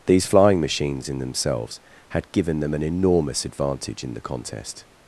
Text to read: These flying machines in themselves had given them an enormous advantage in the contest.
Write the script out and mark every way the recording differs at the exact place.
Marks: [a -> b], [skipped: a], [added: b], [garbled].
These flying machines in themselves had given them an enormous advantage in the contest.